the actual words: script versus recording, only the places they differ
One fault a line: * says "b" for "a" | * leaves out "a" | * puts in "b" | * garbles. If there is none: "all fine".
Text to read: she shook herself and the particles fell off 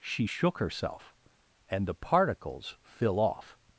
* says "fill" for "fell"